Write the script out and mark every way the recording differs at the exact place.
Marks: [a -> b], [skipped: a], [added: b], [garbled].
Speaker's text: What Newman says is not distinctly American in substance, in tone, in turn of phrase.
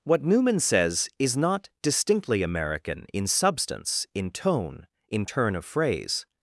What Newman says is not distinctly American in substance, in tone, in turn of phrase.